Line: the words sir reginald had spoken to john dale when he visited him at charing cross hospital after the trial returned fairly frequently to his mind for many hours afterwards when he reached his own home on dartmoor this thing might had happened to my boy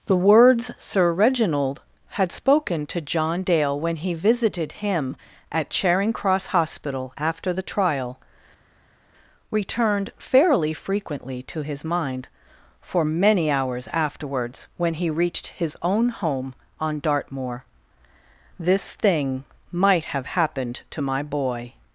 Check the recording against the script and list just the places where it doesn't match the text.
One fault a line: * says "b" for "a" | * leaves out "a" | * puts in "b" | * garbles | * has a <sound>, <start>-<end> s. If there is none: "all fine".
* says "have" for "had"